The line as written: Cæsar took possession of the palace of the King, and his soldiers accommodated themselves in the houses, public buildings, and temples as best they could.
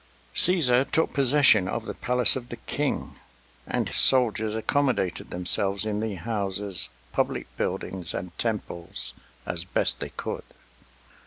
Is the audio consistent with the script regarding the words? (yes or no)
no